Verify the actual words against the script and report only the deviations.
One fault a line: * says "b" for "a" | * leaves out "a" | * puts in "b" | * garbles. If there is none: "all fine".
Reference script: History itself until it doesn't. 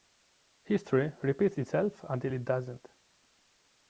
* puts in "repeats"